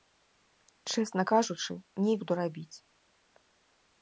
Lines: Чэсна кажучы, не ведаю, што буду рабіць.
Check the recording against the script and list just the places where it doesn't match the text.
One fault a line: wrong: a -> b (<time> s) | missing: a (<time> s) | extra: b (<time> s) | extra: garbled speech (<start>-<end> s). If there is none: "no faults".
missing: ведаю што (2.1 s)